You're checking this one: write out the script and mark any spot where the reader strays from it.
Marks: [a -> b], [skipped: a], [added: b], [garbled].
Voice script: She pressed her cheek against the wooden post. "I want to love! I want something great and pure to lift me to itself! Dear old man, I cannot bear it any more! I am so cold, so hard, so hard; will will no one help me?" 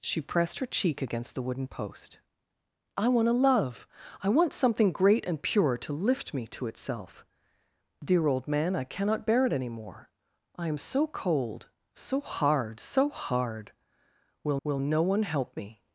She pressed her cheek against the wooden post. "I want to love! I want something great and pure to lift me to itself! Dear old man, I cannot bear it any more! I am so cold, so hard, so hard; will will no one help me?"